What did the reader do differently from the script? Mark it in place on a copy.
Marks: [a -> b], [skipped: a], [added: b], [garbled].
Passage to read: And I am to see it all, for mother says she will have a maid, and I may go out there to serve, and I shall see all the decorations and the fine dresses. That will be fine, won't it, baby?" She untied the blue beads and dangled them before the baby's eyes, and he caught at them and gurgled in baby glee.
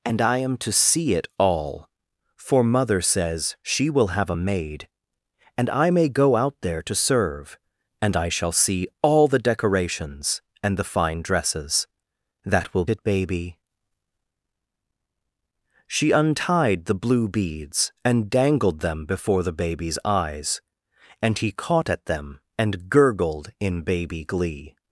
And I am to see it all, for mother says she will have a maid, and I may go out there to serve, and I shall see all the decorations and the fine dresses. That will [skipped: be fine, won't] it, baby?" She untied the blue beads and dangled them before the baby's eyes, and he caught at them and gurgled in baby glee.